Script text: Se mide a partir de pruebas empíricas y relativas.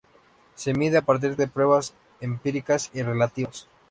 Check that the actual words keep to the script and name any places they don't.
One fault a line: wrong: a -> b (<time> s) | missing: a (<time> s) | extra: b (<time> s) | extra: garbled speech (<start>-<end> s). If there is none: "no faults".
no faults